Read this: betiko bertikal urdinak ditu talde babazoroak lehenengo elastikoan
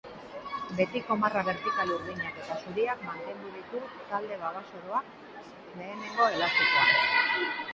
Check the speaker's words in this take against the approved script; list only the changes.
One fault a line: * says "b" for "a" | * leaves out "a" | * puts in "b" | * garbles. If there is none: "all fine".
* puts in "marra"
* puts in "eta zuriak mantendu"